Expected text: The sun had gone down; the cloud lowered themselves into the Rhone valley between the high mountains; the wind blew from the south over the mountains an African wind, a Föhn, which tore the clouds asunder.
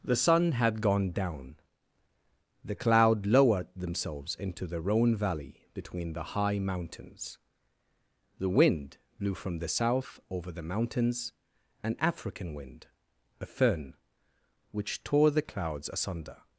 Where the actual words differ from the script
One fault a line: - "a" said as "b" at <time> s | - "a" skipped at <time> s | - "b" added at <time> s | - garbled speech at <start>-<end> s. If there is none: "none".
none